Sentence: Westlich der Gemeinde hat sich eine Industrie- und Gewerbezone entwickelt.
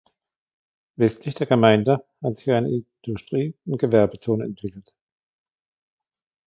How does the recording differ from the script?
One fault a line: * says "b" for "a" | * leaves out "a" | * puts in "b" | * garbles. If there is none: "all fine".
all fine